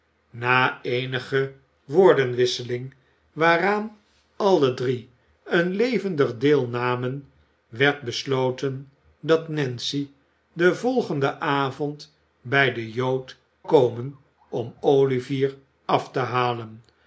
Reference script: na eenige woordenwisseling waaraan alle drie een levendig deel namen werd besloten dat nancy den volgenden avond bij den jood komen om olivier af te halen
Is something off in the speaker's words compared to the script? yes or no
no